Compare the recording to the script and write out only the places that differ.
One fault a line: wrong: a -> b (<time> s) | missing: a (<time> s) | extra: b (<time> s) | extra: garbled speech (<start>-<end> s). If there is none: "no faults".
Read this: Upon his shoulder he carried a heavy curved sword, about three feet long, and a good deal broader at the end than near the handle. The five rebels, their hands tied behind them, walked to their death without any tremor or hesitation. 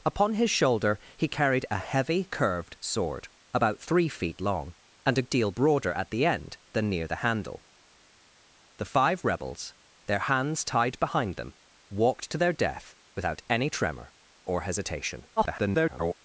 missing: good (5.3 s)
extra: garbled speech (15.4-16.1 s)